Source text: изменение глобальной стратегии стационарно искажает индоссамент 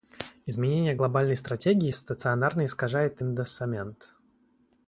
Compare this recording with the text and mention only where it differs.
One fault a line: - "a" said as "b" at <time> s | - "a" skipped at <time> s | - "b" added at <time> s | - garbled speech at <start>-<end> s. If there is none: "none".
none